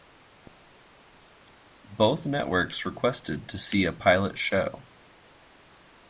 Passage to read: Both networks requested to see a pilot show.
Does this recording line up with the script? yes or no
yes